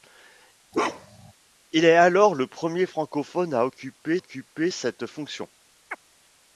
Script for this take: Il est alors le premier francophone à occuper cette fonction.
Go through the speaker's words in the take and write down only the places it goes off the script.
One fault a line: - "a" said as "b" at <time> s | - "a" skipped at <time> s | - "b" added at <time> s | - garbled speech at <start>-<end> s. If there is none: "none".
- "occuper" added at 4.2 s